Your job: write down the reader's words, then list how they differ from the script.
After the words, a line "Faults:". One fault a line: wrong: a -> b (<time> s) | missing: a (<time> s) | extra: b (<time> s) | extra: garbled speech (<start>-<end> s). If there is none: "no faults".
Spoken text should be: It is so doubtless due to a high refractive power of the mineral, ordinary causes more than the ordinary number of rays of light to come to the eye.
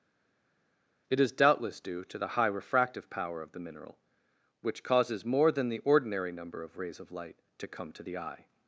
It is doubtless due to the high refractive power of the mineral, which causes more than the ordinary number of rays of light to come to the eye.
Faults:
missing: so (1.3 s)
wrong: a -> the (2.2 s)
wrong: ordinary -> which (4.6 s)